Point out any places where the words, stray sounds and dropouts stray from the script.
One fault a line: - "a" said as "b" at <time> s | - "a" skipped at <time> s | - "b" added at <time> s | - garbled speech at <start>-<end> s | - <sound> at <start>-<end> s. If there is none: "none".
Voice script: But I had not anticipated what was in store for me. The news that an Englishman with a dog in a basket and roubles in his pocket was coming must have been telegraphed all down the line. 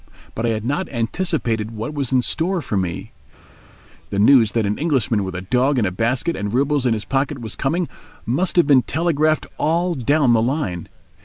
none